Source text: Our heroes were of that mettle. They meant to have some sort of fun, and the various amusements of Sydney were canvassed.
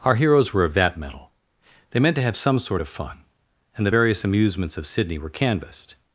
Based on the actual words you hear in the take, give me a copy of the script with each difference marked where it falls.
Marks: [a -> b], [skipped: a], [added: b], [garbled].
Our heroes were of that mettle. They meant to have some sort of fun, and the various amusements of Sydney were canvassed.